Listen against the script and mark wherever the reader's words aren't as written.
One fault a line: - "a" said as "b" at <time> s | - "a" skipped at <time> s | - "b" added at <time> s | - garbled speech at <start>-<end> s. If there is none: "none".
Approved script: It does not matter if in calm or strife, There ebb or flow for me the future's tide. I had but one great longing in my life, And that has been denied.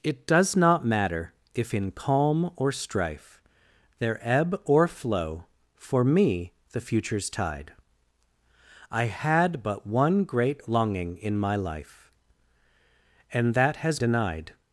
- "been" skipped at 14.0 s